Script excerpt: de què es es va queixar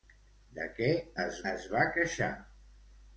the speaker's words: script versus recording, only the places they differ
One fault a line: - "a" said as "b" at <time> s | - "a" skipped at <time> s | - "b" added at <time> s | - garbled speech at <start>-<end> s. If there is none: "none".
none